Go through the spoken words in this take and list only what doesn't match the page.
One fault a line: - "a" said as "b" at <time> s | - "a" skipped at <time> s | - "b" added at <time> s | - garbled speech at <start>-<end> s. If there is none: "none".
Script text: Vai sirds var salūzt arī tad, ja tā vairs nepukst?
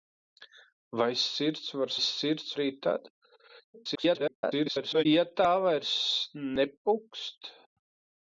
- "salūzt" said as "sirds" at 2.1 s
- garbled speech at 3.7-5.0 s